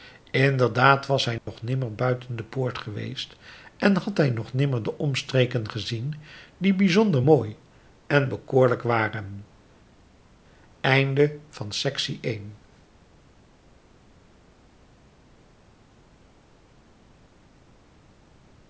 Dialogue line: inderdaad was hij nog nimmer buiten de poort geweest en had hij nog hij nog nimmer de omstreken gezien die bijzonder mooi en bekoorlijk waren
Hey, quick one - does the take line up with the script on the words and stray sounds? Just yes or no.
no